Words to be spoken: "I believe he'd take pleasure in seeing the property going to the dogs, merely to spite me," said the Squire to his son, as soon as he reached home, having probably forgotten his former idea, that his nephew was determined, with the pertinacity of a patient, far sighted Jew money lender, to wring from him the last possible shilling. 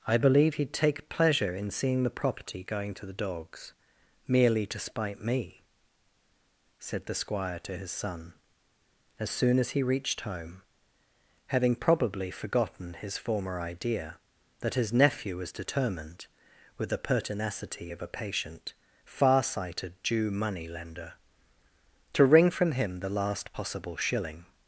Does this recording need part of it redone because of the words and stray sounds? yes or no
no